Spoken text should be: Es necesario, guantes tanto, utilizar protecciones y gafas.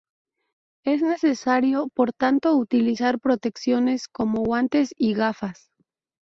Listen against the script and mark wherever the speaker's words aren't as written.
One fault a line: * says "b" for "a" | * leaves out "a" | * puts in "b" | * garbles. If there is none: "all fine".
* says "por" for "guantes"
* puts in "como guantes"